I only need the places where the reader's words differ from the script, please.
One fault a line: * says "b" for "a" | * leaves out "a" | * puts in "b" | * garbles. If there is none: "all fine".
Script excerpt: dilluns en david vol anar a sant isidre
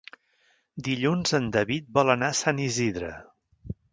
all fine